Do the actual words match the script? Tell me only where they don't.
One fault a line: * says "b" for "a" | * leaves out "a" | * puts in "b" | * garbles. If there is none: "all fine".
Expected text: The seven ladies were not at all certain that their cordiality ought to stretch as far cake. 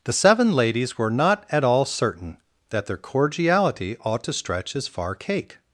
all fine